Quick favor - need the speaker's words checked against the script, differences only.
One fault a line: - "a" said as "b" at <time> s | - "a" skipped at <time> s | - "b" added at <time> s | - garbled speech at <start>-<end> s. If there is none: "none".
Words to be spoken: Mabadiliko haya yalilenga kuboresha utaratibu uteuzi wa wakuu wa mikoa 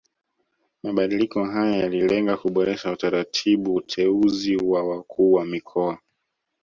none